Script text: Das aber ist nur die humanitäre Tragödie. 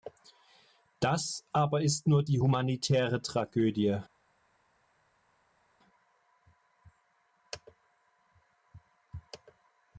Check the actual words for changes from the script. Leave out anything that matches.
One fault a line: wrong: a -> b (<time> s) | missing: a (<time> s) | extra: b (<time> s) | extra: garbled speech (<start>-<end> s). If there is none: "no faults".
no faults